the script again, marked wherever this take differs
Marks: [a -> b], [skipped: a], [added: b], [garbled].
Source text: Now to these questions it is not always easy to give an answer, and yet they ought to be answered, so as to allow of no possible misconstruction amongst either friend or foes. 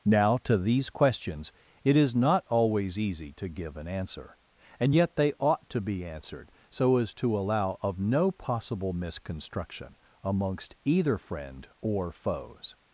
Now to these questions it is not always easy to give an answer, and yet they ought to be answered, so as to allow of no possible misconstruction amongst either friend or foes.